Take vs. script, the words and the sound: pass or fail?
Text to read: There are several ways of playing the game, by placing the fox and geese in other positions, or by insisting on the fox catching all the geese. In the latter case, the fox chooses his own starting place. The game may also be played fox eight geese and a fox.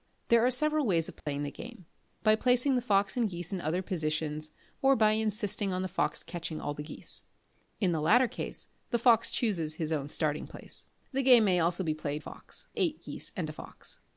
fail